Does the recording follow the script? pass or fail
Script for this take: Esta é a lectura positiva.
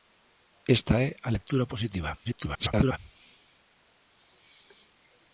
fail